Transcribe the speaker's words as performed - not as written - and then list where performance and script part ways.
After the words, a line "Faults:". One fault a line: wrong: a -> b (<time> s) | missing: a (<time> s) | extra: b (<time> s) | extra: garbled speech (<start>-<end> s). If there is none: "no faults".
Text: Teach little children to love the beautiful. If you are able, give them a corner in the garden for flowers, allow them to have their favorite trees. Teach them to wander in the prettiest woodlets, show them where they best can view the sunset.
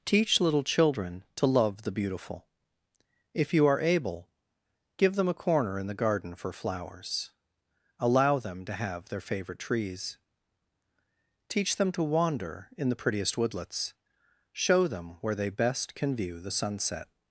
Teach little children to love the beautiful. If you are able, give them a corner in the garden for flowers, allow them to have their favorite trees. Teach them to wander in the prettiest woodlets, show them where they best can view the sunset.
Faults:
no faults